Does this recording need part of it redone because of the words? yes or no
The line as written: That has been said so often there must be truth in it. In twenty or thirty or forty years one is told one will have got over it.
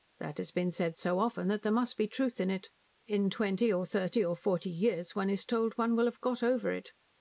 yes